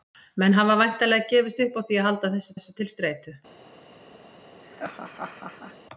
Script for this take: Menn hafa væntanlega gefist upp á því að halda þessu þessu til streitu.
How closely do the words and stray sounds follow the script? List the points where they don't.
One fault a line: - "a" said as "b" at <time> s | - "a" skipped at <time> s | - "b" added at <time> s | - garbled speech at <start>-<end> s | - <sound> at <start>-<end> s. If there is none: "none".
- laugh at 4.6-5.8 s